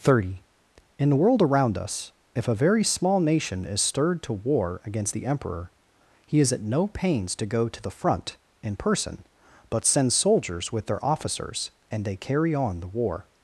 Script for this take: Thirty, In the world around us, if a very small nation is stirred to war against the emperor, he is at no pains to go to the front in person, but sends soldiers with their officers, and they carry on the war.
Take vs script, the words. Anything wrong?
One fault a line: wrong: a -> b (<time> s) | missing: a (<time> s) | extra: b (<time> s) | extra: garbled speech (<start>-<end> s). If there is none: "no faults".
no faults